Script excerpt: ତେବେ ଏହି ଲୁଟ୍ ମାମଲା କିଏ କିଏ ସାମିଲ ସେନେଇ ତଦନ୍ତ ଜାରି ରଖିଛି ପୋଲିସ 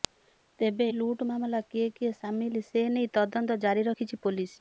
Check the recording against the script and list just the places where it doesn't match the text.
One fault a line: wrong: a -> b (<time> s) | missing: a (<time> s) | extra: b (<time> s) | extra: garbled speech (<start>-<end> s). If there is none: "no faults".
missing: ଏହି (0.9 s)